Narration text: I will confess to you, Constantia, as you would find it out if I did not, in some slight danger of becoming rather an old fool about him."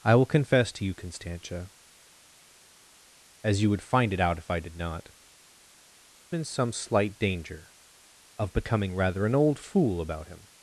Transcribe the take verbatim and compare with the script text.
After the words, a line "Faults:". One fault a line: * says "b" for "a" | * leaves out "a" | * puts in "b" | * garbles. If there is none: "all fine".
I will confess to you, Constantia, as you would find it out if I did not, in some slight danger of becoming rather an old fool about him."
Faults:
all fine